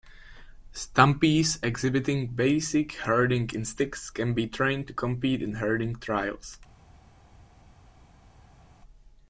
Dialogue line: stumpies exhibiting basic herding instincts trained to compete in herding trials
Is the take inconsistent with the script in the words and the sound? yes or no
yes